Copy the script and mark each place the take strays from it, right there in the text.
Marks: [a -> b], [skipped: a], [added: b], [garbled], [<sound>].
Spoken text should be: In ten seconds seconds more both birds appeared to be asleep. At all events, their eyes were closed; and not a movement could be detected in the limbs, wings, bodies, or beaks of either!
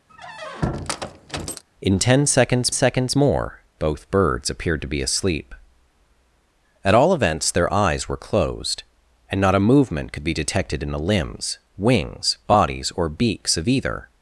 [squeak] In ten seconds seconds more both birds appeared to be asleep. At all events, their eyes were closed; and not a movement could be detected in the limbs, wings, bodies, or beaks of either!